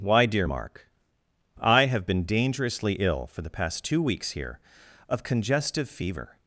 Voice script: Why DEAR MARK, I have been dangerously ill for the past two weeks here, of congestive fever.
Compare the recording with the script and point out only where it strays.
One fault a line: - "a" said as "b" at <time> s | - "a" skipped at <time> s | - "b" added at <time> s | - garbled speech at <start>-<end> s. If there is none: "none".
none